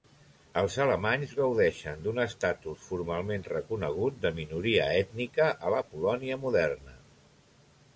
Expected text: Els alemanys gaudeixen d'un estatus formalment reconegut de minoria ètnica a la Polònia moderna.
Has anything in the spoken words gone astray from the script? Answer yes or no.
no